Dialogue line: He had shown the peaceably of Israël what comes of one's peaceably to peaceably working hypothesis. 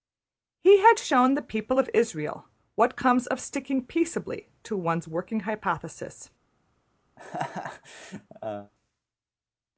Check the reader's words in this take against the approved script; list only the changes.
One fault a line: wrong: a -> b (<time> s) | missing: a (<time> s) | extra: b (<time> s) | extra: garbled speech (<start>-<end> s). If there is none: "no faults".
wrong: peaceably -> people (1.4 s)
wrong: one's -> sticking (3.4 s)
wrong: peaceably -> one's (4.8 s)